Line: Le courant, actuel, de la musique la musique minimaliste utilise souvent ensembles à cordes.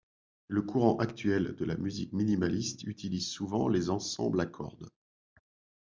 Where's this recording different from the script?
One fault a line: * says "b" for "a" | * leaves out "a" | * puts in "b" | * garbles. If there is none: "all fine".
* leaves out "la musique"
* puts in "les"